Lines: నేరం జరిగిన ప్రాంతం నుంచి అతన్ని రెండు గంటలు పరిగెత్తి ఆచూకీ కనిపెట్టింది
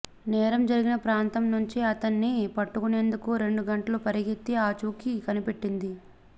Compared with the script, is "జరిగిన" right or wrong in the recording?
right